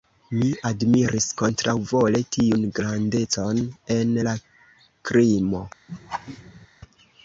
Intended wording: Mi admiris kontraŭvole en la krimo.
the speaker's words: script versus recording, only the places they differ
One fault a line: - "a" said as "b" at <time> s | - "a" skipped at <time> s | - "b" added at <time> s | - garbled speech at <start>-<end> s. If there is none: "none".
- "tiun grandecon" added at 2.4 s